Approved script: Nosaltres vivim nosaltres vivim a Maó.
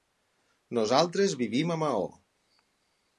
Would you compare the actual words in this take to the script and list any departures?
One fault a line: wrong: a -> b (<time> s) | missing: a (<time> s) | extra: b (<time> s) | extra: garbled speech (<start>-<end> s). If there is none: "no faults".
missing: nosaltres vivim (1.8 s)